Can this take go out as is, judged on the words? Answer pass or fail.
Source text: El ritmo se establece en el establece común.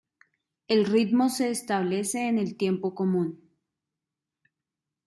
fail